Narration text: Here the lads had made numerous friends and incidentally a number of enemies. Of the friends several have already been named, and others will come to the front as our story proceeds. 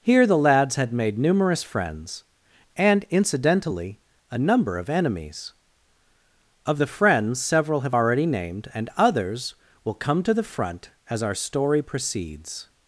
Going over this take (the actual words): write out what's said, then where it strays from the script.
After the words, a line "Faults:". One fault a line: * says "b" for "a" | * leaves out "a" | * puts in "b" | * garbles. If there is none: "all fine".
Here the lads had made numerous friends and incidentally a number of enemies. Of the friends several have already named, and others will come to the front as our story proceeds.
Faults:
* leaves out "been"